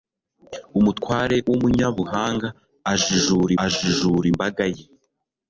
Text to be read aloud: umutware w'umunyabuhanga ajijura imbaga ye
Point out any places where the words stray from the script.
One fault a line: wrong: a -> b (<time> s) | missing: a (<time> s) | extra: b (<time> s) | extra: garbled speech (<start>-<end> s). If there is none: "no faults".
extra: ajijura (3.6 s)